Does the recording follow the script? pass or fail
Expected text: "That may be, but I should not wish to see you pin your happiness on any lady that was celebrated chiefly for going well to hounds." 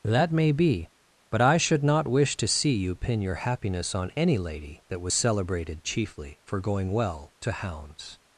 pass